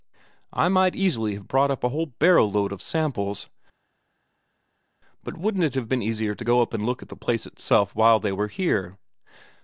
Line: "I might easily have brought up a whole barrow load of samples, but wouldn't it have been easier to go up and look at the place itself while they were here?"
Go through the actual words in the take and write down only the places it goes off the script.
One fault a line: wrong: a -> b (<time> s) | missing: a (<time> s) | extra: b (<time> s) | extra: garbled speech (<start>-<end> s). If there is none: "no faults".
no faults